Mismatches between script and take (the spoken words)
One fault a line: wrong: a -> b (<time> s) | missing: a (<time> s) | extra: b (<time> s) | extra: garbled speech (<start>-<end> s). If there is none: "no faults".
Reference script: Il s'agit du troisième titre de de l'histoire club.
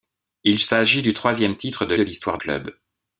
no faults